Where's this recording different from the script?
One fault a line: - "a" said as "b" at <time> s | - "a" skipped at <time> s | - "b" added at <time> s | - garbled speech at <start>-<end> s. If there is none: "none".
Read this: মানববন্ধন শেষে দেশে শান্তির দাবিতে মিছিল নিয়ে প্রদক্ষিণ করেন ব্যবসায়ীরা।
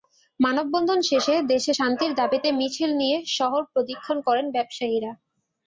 - "শহর" added at 3.4 s